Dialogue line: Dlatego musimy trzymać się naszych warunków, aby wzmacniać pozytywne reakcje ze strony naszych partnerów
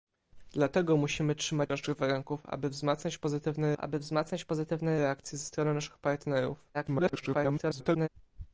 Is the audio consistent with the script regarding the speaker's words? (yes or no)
no